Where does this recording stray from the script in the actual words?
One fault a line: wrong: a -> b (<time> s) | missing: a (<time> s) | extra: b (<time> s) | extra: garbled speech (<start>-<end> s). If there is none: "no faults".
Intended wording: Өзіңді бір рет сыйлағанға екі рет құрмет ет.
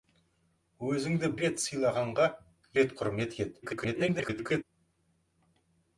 missing: бір (1.3 s)
missing: екі (2.3 s)
extra: garbled speech (3.6-4.6 s)